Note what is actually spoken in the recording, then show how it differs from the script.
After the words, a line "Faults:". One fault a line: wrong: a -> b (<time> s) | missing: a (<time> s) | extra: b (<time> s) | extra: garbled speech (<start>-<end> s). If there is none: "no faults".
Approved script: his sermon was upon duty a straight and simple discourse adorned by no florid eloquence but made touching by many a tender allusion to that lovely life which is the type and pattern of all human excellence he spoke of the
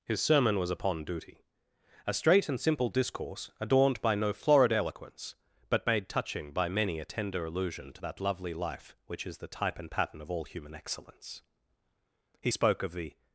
his sermon was upon duty a straight and simple discourse adorned by no florid eloquence but made touching by many a tender allusion to that lovely life which is the type and pattern of all human excellence he spoke of the
Faults:
no faults